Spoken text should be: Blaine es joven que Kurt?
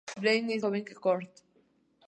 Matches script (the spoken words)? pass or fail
pass